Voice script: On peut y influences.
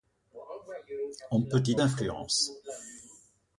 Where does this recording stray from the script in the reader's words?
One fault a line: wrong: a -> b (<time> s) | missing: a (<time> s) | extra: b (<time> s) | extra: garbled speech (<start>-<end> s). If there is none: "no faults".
no faults